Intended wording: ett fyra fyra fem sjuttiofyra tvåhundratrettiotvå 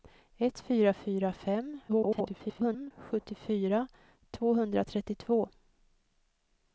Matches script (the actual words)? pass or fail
fail